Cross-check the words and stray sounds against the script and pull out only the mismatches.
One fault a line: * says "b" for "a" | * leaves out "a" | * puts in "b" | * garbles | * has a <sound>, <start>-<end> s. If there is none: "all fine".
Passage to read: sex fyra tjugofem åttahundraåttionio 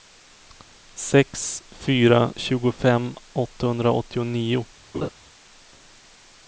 * has a laugh, 4.9-5.1 s